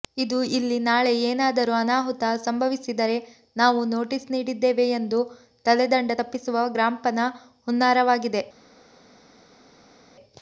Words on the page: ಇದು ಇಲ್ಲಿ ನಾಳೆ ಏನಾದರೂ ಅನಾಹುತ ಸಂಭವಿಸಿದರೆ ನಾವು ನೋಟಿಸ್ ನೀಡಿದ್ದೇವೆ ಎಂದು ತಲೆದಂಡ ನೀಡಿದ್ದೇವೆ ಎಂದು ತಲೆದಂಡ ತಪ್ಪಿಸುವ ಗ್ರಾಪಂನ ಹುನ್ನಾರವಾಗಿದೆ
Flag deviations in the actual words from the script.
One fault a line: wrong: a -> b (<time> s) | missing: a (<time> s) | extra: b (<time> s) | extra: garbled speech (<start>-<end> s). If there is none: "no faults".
missing: ನೀಡಿದ್ದೇವೆ ಎಂದು ತಲೆದಂಡ (6.1 s)